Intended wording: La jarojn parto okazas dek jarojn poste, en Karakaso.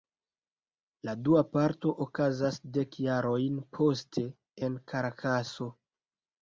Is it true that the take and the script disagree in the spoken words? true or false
true